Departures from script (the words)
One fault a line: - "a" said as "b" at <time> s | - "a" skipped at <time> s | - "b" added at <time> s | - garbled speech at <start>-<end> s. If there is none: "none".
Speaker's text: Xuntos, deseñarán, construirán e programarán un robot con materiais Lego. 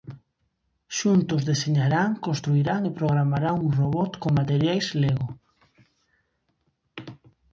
none